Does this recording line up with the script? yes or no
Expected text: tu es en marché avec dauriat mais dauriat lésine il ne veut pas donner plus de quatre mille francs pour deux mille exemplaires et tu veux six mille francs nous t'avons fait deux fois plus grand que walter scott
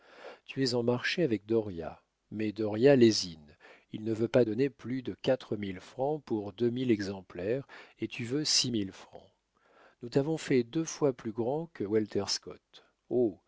yes